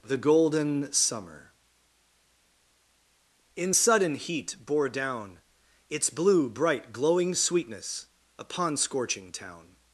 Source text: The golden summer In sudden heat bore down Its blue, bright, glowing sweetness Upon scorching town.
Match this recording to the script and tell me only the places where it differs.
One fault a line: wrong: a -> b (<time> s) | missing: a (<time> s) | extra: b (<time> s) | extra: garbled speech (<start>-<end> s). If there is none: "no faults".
no faults